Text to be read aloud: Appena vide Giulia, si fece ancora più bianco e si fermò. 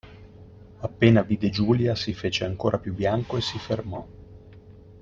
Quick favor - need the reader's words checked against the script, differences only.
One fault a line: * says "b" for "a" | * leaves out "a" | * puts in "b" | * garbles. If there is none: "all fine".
all fine